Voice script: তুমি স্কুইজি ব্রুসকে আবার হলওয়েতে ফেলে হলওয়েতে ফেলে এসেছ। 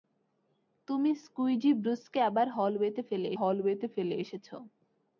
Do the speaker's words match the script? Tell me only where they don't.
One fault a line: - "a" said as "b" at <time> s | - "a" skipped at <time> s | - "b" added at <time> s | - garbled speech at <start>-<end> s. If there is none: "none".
none